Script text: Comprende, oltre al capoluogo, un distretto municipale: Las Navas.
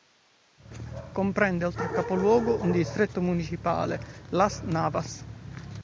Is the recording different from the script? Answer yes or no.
no